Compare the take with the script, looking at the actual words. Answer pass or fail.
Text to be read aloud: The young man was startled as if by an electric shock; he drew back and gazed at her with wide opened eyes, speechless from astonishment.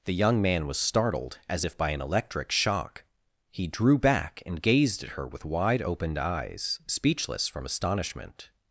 pass